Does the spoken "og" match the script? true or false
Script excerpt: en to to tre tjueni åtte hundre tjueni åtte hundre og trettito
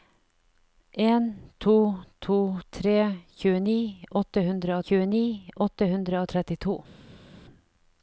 true